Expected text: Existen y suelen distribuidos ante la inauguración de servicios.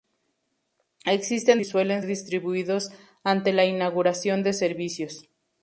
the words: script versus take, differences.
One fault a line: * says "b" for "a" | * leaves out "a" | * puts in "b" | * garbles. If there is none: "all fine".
all fine